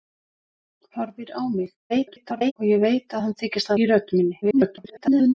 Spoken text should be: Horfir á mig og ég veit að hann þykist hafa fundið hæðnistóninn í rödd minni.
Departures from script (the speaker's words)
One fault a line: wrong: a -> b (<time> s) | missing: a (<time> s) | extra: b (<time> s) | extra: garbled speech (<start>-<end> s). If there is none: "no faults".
extra: garbled speech (1.9-2.5 s)
missing: hafa fundið hæðnistóninn (3.7 s)
extra: garbled speech (4.4-5.3 s)